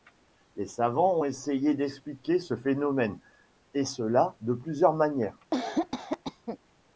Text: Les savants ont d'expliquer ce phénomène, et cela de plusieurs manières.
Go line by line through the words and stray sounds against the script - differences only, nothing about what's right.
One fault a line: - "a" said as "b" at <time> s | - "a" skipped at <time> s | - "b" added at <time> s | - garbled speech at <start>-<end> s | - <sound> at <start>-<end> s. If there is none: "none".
- "essayé" added at 1.2 s
- cough at 5.5-6.6 s